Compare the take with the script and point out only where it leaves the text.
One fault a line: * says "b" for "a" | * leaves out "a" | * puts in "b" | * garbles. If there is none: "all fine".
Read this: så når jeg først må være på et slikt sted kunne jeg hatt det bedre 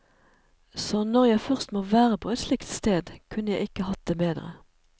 * puts in "ikke"